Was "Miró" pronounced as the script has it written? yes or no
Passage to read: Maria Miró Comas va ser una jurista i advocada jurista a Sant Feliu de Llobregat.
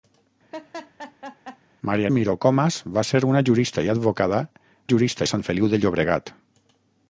yes